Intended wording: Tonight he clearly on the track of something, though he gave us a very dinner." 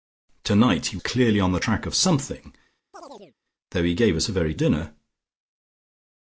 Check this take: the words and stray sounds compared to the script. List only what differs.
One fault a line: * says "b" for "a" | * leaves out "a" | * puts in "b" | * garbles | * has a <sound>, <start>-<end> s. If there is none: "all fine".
* has a chirp, 2.9-3.4 s